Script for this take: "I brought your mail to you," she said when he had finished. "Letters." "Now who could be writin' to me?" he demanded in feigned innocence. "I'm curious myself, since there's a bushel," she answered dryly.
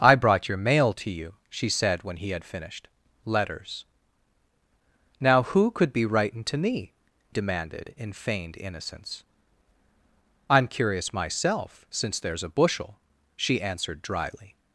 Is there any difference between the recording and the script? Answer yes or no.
yes